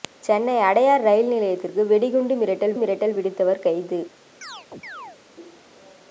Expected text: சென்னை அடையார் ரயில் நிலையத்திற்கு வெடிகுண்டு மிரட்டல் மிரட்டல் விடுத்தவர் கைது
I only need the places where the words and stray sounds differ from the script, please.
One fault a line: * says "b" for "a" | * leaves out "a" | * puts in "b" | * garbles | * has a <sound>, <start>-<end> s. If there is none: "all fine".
* has a chirp, 4.4-5.2 s